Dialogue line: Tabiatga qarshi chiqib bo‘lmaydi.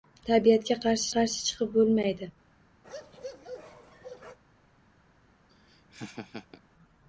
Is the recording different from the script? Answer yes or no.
yes